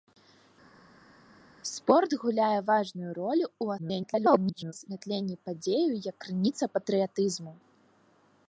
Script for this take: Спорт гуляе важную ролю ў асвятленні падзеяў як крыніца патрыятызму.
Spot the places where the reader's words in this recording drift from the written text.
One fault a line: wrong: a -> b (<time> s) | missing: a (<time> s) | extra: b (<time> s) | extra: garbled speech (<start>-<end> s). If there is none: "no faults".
extra: garbled speech (3.8-4.7 s)